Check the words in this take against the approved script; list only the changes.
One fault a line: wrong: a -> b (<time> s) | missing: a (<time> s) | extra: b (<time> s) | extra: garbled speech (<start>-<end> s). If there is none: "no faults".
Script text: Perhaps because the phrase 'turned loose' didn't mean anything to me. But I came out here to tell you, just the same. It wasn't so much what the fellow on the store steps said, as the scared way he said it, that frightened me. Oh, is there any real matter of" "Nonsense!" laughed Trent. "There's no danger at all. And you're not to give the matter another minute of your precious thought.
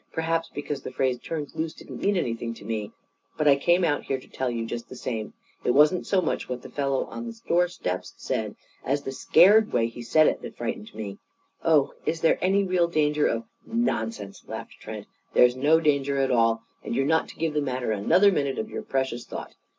wrong: matter -> danger (12.9 s)